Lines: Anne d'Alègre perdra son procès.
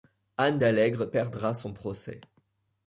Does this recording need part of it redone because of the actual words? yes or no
no